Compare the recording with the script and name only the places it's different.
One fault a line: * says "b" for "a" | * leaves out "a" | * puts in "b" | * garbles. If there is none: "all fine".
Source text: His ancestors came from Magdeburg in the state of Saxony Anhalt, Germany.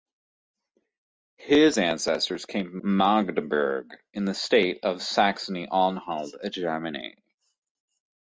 all fine